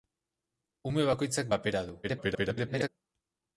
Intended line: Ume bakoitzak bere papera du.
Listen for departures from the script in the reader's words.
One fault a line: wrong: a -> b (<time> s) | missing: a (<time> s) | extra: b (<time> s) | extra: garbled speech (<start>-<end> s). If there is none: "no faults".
missing: bere (1.5 s)
extra: garbled speech (2.0-2.9 s)